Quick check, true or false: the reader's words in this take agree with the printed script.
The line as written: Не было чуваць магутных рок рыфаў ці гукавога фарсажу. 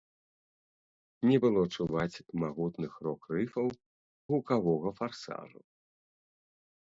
false